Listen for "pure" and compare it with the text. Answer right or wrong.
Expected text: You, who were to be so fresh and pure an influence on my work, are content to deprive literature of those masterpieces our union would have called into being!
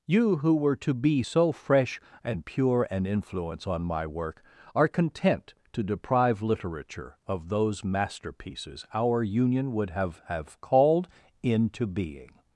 right